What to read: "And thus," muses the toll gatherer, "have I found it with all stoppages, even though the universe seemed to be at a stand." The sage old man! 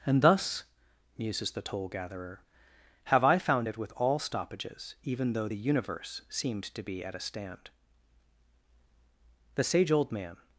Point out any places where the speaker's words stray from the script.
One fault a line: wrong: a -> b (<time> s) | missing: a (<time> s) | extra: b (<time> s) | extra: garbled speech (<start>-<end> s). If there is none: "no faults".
no faults